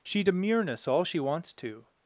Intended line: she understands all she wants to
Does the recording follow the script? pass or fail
fail